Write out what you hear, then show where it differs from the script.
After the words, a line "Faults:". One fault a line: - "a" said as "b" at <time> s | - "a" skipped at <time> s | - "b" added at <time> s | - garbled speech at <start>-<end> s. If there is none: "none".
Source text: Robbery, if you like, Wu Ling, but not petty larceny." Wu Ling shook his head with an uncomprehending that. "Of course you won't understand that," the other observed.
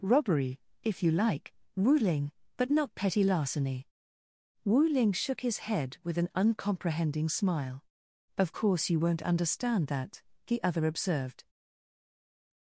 Robbery, if you like, Wu Ling, but not petty larceny." Wu Ling shook his head with an uncomprehending smile. "Of course you won't understand that," the other observed.
Faults:
- "that" said as "smile" at 7.3 s